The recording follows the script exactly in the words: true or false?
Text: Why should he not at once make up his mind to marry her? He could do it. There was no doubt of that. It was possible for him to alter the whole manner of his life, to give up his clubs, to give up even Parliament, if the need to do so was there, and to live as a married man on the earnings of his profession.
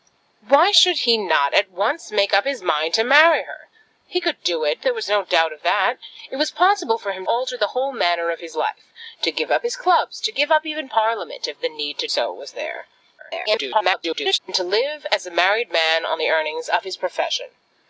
false